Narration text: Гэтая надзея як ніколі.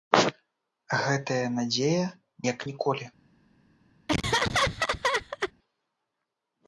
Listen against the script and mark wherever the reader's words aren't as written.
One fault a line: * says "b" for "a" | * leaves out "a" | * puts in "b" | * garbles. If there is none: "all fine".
all fine